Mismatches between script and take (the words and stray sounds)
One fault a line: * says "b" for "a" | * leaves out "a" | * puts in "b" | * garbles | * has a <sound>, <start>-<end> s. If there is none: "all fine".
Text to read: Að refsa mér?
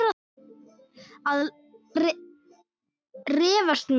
all fine